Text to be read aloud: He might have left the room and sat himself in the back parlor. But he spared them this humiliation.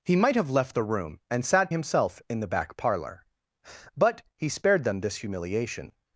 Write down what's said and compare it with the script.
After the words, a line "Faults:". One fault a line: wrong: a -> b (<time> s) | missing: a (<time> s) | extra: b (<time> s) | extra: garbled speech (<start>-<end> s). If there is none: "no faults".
He might have left the room and sat himself in the back parlor. But he spared them this humiliation.
Faults:
no faults